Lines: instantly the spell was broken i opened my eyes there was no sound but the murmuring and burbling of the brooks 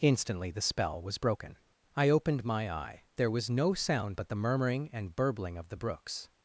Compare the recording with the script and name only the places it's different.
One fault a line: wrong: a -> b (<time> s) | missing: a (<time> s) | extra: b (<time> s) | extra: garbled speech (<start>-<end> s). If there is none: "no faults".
wrong: eyes -> eye (2.7 s)